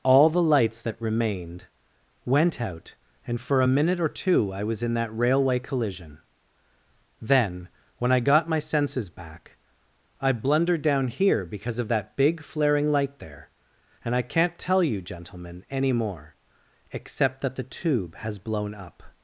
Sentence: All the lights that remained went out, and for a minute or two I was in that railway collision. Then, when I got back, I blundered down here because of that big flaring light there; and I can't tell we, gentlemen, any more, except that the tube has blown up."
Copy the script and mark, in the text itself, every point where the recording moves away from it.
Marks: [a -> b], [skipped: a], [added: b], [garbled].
All the lights that remained went out, and for a minute or two I was in that railway collision. Then, when I got [added: my senses] back, I blundered down here because of that big flaring light there; and I can't tell [we, -> you] gentlemen, any more, except that the tube has blown up."